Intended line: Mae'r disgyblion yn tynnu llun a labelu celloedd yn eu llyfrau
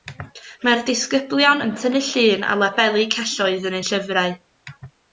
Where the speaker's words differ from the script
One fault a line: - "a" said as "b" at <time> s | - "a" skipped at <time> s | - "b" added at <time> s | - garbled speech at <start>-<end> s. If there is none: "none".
none